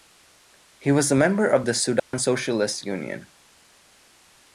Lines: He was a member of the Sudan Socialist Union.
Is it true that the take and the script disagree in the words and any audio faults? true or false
true